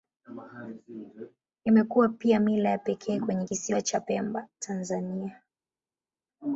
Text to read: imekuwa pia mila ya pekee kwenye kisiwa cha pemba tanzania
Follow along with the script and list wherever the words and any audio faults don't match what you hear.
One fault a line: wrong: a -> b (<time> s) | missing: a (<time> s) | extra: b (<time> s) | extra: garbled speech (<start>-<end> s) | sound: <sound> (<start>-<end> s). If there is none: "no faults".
no faults